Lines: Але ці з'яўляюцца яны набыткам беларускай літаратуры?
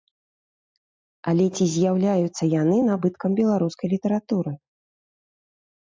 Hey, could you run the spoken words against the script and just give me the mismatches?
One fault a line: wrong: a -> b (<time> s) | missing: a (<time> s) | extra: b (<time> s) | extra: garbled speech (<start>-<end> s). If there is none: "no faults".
no faults